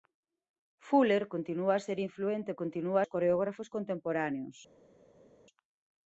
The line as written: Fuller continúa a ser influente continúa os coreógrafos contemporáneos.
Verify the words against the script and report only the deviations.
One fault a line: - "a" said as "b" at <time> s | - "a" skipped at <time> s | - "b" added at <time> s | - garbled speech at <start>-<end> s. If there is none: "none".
none